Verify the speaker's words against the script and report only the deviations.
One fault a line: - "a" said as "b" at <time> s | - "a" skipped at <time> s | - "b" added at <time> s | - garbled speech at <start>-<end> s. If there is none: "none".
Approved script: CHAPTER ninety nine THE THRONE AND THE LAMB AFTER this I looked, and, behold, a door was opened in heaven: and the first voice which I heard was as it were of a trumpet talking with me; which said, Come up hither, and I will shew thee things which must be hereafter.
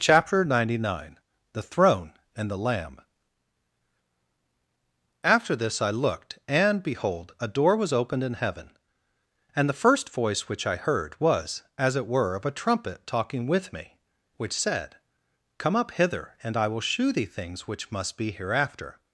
none